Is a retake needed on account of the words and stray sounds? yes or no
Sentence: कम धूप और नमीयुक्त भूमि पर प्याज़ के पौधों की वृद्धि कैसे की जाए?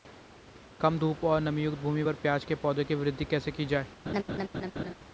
yes